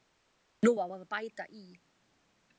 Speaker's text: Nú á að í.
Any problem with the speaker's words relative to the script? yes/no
yes